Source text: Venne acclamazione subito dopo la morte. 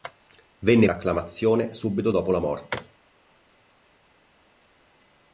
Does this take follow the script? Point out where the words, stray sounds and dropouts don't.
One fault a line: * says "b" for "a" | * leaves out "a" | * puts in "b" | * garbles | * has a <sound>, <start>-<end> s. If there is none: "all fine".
all fine